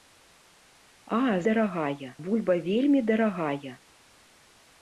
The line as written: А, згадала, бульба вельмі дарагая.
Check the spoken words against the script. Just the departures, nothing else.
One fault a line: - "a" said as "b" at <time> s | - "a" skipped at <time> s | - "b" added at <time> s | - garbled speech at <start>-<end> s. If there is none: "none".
- "згадала" said as "дарагая" at 1.5 s